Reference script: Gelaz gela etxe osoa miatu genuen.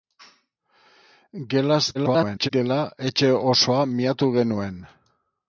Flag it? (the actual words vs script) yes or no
yes